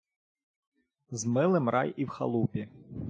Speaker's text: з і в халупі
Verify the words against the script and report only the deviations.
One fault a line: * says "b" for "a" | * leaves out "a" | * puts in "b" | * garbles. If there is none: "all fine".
* puts in "милим рай"